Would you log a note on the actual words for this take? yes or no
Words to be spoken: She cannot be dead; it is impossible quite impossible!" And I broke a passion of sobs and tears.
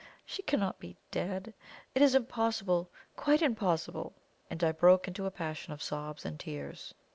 yes